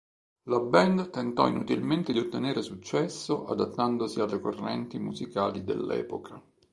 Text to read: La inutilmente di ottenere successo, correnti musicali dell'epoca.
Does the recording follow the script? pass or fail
fail